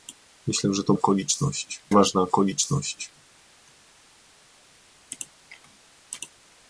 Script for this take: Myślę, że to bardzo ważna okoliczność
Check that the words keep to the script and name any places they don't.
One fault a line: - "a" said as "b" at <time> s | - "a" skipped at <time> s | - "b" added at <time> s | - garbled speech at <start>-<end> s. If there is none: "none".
- "bardzo" said as "okoliczność" at 0.9 s